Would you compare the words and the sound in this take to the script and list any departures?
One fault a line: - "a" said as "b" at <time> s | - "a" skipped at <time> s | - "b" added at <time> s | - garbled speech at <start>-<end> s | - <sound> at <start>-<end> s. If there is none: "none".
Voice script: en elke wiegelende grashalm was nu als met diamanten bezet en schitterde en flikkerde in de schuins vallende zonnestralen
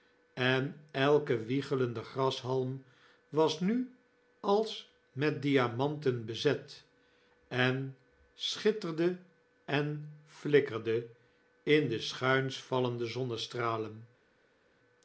none